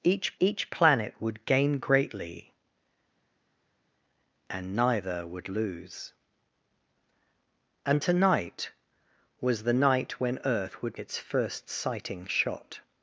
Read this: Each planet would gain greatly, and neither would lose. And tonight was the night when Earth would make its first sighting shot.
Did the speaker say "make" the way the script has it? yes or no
no